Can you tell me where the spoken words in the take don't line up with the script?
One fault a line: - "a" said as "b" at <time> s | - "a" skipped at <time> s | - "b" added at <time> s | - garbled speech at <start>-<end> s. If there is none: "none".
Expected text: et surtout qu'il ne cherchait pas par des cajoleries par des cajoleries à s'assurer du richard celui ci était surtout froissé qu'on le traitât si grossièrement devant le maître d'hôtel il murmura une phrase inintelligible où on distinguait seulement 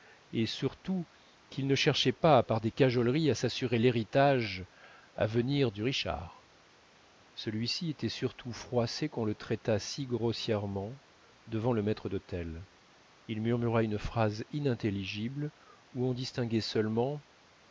- "par des cajoleries" said as "à s'assurer l'héritage" at 3.3 s
- "s'assurer" said as "venir" at 5.3 s